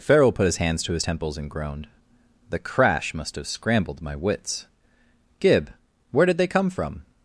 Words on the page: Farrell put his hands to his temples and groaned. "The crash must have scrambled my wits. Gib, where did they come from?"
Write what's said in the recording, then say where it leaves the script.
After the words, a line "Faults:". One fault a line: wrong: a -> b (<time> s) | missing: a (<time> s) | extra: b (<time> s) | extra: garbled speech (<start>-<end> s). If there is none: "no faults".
Farrell put his hands to his temples and groaned. "The crash must have scrambled my wits. Gib, where did they come from?"
Faults:
no faults